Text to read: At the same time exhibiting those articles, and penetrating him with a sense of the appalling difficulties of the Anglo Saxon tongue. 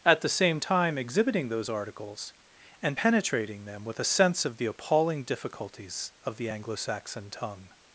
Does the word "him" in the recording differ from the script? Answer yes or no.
yes